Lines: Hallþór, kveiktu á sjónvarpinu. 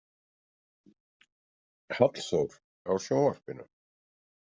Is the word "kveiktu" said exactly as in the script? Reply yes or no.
no